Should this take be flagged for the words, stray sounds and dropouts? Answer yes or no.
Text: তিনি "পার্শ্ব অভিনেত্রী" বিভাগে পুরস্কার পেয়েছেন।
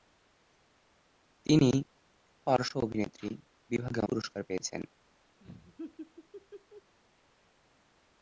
yes